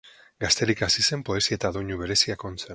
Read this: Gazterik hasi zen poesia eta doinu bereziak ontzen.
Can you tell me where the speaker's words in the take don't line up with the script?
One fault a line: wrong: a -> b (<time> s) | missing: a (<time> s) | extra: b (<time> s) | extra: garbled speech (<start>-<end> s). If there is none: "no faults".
no faults